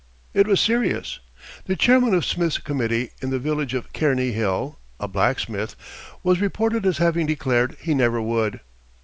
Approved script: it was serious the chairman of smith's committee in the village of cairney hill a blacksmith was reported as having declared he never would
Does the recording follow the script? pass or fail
pass